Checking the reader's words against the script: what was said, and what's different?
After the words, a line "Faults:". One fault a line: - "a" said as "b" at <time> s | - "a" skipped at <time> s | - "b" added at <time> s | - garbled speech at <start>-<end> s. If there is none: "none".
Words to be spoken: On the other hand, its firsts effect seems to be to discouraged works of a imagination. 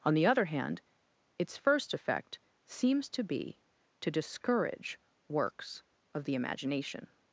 On the other hand, its first effect seems to be to discourage works of the imagination.
Faults:
- "firsts" said as "first" at 1.5 s
- "discouraged" said as "discourage" at 4.1 s
- "a" said as "the" at 6.2 s